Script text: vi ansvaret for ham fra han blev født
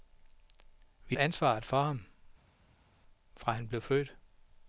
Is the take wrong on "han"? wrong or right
right